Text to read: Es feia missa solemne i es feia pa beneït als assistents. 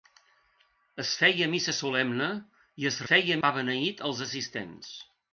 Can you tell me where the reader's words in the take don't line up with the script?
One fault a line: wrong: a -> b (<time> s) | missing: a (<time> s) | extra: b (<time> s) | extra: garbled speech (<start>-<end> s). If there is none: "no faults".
no faults